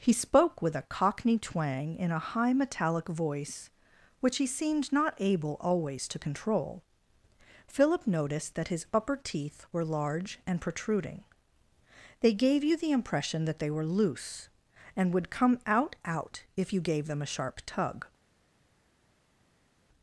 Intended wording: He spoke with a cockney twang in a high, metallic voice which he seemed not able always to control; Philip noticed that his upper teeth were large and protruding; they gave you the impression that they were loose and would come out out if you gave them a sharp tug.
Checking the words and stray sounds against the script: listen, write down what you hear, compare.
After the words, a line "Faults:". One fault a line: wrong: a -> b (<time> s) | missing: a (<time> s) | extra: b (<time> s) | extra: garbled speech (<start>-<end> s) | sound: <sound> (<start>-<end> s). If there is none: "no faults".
He spoke with a cockney twang in a high, metallic voice which he seemed not able always to control; Philip noticed that his upper teeth were large and protruding; they gave you the impression that they were loose and would come out out if you gave them a sharp tug.
Faults:
no faults